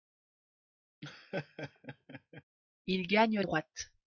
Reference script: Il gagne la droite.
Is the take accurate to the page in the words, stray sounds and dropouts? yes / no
no